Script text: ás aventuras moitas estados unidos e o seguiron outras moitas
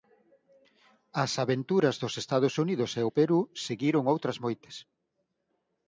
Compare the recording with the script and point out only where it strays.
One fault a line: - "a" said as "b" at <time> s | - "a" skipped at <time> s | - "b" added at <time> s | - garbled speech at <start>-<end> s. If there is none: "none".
- "moitas" said as "dos" at 2.0 s
- "perú" added at 3.2 s